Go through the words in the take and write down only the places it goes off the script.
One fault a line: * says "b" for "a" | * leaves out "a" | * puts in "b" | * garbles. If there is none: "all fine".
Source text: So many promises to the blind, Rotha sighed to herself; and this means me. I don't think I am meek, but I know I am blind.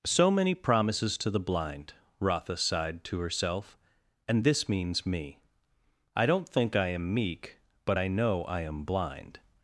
all fine